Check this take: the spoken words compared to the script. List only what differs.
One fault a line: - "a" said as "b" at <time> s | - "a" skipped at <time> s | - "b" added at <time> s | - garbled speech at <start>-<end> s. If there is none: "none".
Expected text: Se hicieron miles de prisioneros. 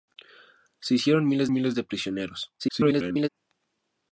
- "miles" added at 1.5 s
- garbled speech at 2.6-3.3 s